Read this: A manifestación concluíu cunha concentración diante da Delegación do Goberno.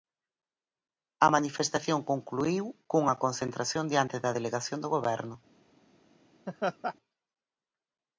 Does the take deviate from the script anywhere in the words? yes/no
no